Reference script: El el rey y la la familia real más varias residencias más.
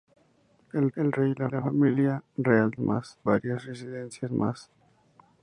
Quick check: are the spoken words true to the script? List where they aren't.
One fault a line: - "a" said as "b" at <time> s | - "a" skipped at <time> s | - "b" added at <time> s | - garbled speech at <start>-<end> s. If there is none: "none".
none